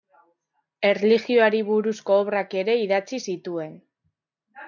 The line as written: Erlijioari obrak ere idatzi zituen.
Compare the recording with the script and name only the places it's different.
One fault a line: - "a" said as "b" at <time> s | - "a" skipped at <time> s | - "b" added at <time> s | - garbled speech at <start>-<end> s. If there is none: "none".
- "buruzko" added at 1.7 s